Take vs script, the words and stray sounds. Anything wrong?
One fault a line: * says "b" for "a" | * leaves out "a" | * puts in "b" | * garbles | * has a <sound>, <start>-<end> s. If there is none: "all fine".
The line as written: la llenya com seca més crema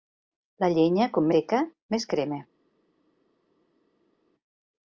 all fine